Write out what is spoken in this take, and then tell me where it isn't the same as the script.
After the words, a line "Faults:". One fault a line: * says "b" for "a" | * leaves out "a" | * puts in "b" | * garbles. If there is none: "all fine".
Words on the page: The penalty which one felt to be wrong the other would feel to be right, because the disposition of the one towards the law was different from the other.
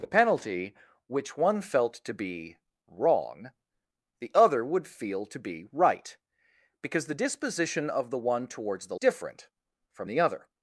The penalty which one felt to be wrong the other would feel to be right, because the disposition of the one towards the different from the other.
Faults:
* leaves out "law was"